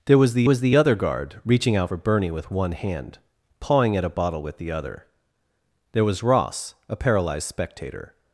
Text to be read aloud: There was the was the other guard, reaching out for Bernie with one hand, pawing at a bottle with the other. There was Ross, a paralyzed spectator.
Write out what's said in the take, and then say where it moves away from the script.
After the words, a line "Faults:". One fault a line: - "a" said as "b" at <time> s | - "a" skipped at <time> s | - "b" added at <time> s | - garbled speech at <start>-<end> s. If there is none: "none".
There was the was the other guard, reaching out for Bernie with one hand, pawing at a bottle with the other. There was Ross, a paralyzed spectator.
Faults:
none